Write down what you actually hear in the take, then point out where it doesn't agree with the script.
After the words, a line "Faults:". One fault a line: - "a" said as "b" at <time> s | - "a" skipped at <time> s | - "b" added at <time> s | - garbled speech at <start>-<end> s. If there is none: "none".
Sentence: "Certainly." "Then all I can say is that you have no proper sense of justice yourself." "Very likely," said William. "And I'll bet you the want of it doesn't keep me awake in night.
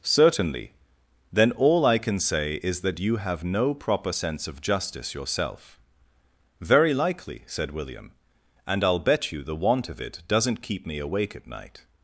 "Certainly." "Then all I can say is that you have no proper sense of justice yourself." "Very likely," said William. "And I'll bet you the want of it doesn't keep me awake at night.
Faults:
- "in" said as "at" at 11.4 s